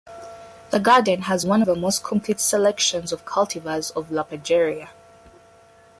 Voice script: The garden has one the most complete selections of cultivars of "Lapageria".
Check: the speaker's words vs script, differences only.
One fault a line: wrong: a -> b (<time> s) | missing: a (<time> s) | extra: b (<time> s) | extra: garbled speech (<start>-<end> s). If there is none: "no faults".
no faults